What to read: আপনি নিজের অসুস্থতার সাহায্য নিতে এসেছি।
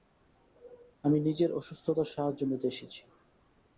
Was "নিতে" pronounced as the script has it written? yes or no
yes